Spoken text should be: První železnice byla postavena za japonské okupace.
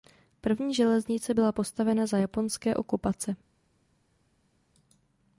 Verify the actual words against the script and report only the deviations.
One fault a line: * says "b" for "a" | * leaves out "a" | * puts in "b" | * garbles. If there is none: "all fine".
all fine